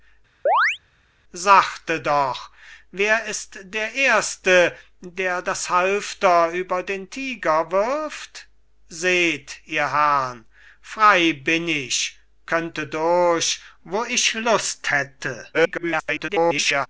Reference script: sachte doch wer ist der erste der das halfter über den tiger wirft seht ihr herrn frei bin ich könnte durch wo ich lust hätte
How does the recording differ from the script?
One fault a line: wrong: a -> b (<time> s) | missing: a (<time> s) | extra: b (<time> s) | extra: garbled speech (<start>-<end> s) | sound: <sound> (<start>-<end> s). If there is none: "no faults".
sound: chirp (0.5-0.8 s)
extra: garbled speech (15.5-16.9 s)